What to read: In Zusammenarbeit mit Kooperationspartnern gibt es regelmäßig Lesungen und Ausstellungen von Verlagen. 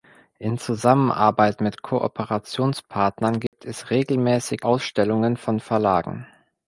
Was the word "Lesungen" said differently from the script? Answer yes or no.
yes